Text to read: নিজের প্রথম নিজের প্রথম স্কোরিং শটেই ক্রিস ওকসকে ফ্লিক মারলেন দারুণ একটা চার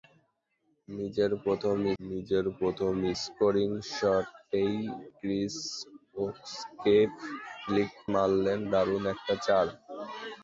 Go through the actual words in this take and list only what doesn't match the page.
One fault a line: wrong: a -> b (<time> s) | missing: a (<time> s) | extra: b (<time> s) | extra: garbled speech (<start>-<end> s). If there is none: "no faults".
no faults